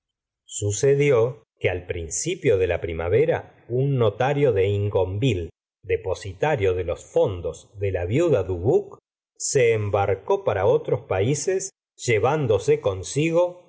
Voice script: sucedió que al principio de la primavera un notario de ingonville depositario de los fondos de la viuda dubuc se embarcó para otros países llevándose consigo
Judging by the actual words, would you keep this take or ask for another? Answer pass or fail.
pass